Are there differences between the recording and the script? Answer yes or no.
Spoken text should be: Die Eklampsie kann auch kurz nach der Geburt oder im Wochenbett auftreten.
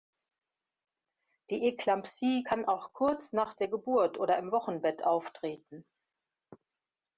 no